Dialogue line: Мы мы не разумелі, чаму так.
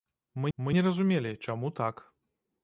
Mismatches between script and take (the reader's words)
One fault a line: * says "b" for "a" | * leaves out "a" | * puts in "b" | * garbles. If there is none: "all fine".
all fine